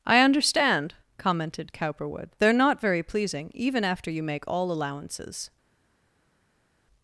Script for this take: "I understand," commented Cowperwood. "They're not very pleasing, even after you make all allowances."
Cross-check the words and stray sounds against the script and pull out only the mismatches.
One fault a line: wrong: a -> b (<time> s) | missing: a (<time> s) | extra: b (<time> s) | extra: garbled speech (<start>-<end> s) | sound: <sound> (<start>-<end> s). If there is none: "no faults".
no faults